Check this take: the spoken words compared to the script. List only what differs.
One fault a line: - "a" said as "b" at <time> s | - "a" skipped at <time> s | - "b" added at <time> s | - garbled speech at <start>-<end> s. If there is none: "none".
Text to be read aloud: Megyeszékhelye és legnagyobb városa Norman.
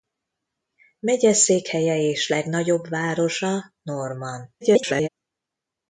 - garbled speech at 4.6-5.1 s